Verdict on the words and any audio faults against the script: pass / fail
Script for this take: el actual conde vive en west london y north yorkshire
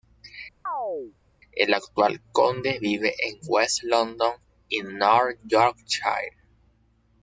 fail